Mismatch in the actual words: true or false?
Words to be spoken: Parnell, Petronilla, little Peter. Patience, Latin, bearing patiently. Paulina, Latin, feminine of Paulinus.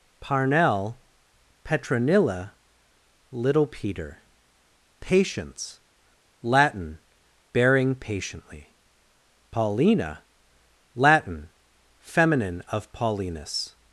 false